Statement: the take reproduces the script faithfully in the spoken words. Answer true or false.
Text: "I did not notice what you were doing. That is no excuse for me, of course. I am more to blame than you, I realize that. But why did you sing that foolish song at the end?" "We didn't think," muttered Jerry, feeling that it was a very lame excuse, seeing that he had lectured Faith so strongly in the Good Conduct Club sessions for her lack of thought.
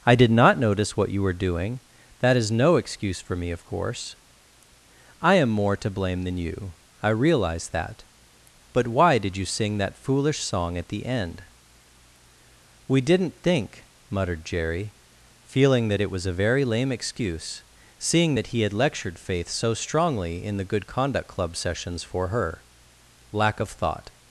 true